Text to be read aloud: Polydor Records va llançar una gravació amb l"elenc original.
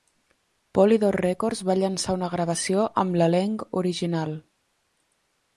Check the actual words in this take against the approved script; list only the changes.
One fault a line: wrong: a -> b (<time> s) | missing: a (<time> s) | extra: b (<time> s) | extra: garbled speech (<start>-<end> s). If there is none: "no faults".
no faults